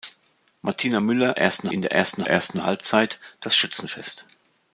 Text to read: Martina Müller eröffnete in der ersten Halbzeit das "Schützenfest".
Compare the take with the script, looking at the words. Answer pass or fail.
fail